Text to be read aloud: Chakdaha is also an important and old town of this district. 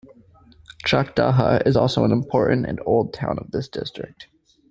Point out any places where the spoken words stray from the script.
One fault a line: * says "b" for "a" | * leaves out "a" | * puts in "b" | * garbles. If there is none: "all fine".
all fine